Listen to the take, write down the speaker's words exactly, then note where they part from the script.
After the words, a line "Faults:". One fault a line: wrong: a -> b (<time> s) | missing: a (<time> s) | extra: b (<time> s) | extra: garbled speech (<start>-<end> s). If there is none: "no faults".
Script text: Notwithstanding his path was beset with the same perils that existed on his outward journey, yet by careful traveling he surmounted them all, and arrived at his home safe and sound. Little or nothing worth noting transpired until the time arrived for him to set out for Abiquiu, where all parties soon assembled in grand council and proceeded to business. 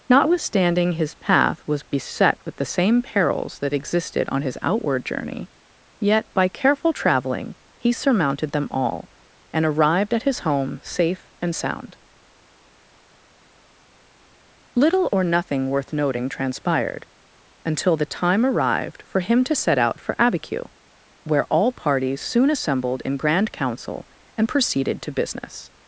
Notwithstanding his path was beset with the same perils that existed on his outward journey, yet by careful traveling he surmounted them all, and arrived at his home safe and sound. Little or nothing worth noting transpired until the time arrived for him to set out for Abiquiu, where all parties soon assembled in grand council and proceeded to business.
Faults:
no faults